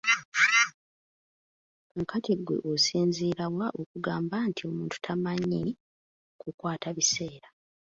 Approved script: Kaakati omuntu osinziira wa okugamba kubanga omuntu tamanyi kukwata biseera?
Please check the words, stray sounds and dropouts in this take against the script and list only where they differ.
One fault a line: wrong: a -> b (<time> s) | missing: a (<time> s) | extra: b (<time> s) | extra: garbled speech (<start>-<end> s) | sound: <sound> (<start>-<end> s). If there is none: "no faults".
wrong: omuntu -> ggwe (2.4 s)
wrong: kubanga -> nti (4.5 s)